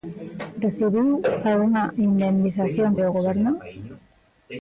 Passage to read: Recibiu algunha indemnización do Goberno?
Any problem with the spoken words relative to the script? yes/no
no